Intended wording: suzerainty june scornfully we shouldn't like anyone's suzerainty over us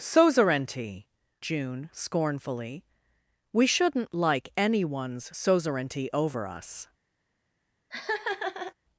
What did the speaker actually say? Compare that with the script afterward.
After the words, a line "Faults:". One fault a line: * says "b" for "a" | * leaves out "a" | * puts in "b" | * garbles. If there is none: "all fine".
suzerainty june scornfully we shouldn't like anyone's suzerainty over us
Faults:
all fine